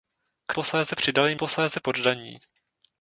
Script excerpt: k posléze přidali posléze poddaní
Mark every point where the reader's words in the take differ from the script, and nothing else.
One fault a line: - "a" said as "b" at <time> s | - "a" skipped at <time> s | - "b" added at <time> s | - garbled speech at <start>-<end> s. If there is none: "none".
none